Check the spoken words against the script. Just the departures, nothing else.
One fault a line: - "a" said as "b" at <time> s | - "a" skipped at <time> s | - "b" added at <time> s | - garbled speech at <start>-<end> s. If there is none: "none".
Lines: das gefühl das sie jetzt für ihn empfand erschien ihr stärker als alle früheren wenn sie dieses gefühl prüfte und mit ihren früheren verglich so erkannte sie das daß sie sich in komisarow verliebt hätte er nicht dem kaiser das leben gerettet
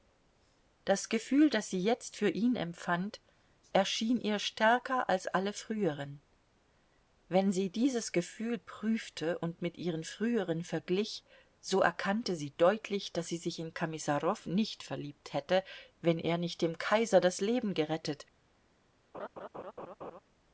- "das" said as "deutlich" at 12.6 s
- "nicht" added at 14.5 s
- "wenn" added at 16.0 s